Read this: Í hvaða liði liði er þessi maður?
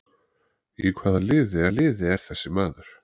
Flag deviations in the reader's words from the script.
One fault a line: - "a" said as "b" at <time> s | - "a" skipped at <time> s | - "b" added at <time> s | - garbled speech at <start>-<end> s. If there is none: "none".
none